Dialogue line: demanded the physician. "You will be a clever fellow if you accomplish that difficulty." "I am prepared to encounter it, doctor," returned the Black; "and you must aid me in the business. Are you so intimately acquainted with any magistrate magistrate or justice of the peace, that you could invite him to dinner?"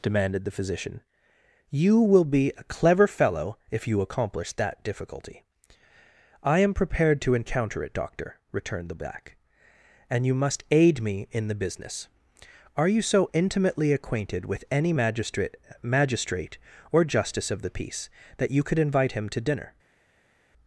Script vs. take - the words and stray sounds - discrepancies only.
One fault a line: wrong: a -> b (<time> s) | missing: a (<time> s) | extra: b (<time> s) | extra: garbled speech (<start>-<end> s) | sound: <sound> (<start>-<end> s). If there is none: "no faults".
no faults